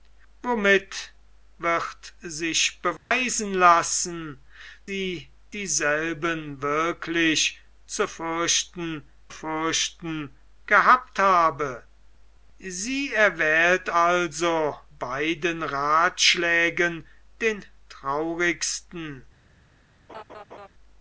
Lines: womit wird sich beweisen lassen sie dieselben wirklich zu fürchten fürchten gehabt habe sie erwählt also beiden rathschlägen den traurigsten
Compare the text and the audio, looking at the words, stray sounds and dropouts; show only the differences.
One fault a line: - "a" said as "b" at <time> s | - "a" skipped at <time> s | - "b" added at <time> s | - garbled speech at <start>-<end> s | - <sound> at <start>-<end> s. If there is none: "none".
- dropout at 3.0-3.1 s
- laugh at 20.1-20.7 s